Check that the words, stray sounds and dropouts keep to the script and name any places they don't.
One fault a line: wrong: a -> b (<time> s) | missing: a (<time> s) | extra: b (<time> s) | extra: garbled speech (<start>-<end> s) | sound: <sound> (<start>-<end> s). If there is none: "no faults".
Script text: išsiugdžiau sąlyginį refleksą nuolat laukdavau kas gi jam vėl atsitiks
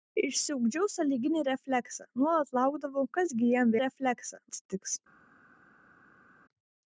wrong: vėl -> refleksą (3.8 s)